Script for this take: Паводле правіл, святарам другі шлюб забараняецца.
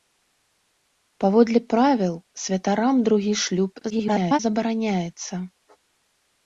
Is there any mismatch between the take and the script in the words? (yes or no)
yes